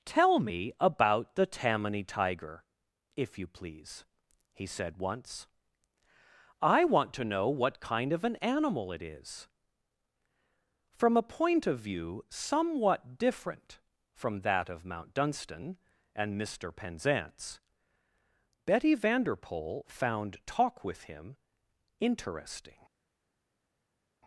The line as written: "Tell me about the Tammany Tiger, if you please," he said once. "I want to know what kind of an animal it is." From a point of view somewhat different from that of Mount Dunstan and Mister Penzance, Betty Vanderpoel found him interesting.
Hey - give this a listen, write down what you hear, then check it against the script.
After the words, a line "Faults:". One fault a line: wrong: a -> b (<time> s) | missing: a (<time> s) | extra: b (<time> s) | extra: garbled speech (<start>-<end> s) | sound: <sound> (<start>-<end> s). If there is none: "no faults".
"Tell me about the Tammany Tiger, if you please," he said once. "I want to know what kind of an animal it is." From a point of view somewhat different from that of Mount Dunstan and Mister Penzance, Betty Vanderpoel found talk with him interesting.
Faults:
extra: talk with (20.5 s)